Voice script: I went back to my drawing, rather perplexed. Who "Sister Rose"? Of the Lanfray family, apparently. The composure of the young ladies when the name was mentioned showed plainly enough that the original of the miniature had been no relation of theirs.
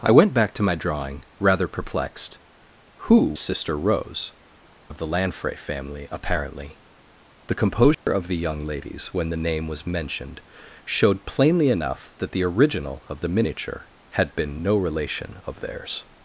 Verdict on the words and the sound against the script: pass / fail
fail